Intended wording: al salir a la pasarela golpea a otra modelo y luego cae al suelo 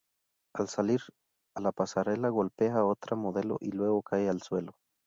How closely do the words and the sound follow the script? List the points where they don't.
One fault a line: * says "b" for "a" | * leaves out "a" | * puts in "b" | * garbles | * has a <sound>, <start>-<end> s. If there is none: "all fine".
all fine